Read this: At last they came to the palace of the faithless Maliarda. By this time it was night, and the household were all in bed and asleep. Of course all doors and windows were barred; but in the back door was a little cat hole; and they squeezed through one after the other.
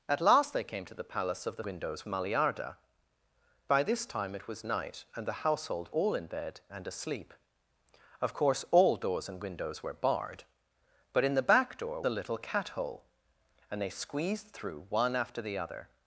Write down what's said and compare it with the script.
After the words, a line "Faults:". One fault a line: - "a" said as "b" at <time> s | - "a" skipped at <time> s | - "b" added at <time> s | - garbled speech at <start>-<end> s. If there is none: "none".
At last they came to the palace of the windows Maliarda. By this time it was night, and the household all in bed and asleep. Of course all doors and windows were barred; but in the back door a little cat hole; and they squeezed through one after the other.
Faults:
- "faithless" said as "windows" at 1.6 s
- "were" skipped at 5.9 s
- "was" skipped at 12.0 s